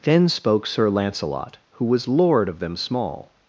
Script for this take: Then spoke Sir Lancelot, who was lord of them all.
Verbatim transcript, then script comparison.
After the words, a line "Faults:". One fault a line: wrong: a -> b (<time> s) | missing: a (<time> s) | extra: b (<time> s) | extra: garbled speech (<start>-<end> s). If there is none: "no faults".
Then spoke Sir Lancelot, who was lord of them small.
Faults:
wrong: all -> small (2.8 s)